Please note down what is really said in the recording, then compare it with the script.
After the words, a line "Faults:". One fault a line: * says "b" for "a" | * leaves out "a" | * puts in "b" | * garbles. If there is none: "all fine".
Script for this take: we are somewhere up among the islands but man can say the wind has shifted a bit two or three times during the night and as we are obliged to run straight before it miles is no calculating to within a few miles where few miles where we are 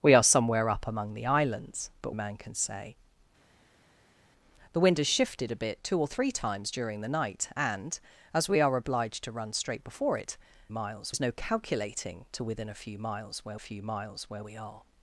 we are somewhere up among the islands but man can say the wind has shifted a bit two or three times during the night and as we are obliged to run straight before it miles is no calculating to within a few miles where few miles where we are
Faults:
all fine